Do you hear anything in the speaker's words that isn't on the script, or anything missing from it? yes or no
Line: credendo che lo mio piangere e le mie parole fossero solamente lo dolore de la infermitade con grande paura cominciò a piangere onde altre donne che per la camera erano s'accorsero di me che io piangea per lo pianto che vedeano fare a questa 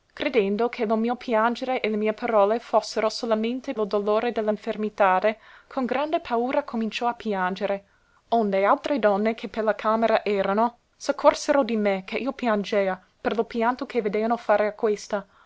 no